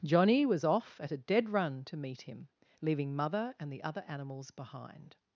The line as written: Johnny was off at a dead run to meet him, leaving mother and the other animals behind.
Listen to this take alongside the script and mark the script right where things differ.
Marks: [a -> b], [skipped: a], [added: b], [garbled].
Johnny was off at a dead run to meet him, leaving mother and the other animals behind.